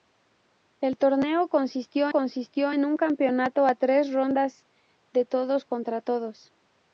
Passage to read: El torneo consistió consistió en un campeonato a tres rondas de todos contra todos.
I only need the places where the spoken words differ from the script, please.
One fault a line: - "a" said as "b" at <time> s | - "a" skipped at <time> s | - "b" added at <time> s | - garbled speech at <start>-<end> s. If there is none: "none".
none